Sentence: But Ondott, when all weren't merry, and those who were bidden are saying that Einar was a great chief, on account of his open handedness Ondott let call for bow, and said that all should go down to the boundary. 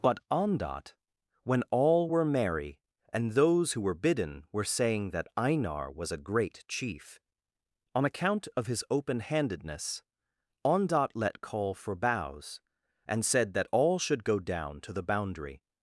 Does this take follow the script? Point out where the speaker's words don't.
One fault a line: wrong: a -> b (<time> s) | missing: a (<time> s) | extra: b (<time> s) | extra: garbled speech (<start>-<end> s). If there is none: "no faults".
wrong: weren't -> were (2.1 s)
wrong: are -> were (4.5 s)
wrong: bow -> bows (11.9 s)